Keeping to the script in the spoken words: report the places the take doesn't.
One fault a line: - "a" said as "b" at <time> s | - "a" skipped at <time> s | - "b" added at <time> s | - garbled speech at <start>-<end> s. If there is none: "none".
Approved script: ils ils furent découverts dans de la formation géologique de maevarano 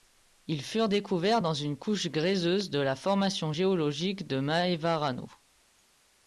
- "ils" skipped at 0.6 s
- "une couche gréseuse" added at 1.5 s